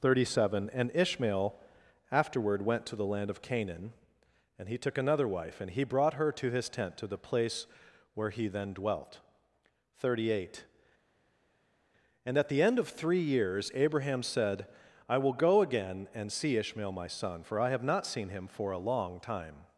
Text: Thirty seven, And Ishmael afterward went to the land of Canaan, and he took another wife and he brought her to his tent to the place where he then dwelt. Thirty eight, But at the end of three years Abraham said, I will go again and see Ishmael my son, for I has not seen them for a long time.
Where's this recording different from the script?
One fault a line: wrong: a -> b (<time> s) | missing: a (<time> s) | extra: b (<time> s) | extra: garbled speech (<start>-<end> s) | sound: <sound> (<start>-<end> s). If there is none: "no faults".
wrong: But -> And (12.2 s)
wrong: has -> have (17.7 s)
wrong: them -> him (18.3 s)